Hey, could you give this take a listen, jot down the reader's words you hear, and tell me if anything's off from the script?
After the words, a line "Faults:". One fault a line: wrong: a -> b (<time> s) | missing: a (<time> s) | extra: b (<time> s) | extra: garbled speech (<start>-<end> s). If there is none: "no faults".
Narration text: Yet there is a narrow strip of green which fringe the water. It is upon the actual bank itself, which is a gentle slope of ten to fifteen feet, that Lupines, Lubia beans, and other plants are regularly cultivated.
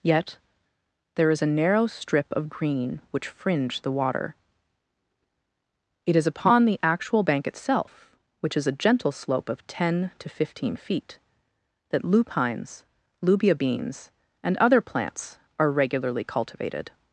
Yet there is a narrow strip of green which fringe the water. It is upon the actual bank itself, which is a gentle slope of ten to fifteen feet, that Lupines, Lubia beans, and other plants are regularly cultivated.
Faults:
no faults